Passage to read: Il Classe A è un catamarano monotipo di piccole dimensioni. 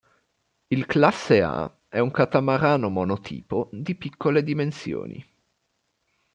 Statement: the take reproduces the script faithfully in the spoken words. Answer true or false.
true